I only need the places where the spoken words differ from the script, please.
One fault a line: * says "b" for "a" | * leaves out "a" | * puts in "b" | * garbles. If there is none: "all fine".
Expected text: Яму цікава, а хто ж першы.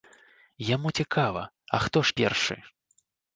all fine